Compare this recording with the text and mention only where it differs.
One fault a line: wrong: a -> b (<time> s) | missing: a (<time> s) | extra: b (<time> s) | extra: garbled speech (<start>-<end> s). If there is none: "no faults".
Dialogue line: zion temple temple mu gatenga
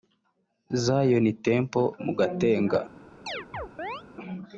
missing: temple (1.9 s)